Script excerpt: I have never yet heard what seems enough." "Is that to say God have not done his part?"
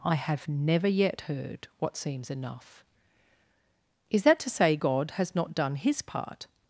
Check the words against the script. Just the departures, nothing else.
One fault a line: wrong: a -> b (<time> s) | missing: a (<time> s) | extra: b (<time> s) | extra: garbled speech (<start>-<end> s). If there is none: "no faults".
wrong: have -> has (5.1 s)